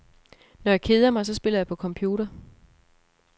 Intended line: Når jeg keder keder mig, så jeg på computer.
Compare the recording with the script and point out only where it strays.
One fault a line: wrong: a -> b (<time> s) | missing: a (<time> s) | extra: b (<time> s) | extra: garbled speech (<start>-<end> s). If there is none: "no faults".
missing: keder (1.1 s)
extra: spiller (1.3 s)